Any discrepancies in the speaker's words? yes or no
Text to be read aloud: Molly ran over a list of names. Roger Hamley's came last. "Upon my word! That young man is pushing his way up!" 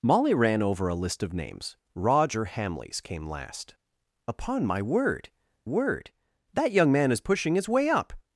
yes